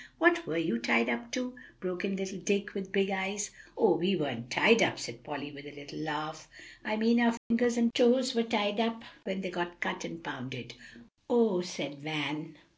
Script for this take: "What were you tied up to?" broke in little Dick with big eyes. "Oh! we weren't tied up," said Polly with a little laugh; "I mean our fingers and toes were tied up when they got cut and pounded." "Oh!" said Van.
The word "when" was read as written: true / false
true